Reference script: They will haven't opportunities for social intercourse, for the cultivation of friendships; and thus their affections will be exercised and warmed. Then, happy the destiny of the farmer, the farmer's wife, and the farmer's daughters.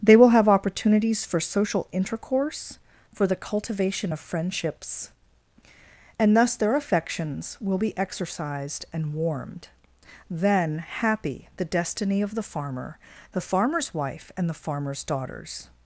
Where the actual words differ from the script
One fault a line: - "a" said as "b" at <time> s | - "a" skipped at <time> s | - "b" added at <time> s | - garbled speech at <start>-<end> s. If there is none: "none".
- "haven't" said as "have" at 0.3 s